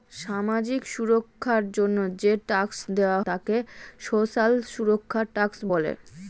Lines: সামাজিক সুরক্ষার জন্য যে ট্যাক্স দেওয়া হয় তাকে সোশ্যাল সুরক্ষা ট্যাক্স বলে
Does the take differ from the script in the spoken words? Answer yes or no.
yes